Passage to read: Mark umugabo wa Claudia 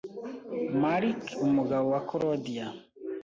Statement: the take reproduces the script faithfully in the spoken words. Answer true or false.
true